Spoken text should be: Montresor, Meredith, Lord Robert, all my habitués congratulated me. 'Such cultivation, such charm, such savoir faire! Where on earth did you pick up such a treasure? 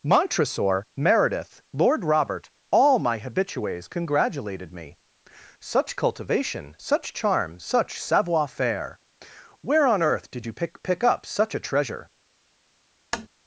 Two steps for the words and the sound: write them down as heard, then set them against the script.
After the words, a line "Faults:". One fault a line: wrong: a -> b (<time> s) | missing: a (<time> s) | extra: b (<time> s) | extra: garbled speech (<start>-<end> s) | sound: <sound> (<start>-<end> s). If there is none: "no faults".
Montresor, Meredith, Lord Robert, all my habitués congratulated me. 'Such cultivation, such charm, such savoir faire! Where on earth did you pick pick up such a treasure?
Faults:
extra: pick (10.8 s)
sound: tap (13.1-13.3 s)